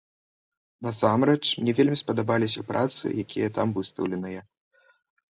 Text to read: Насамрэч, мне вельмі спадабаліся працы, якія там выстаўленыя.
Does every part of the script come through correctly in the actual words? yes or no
yes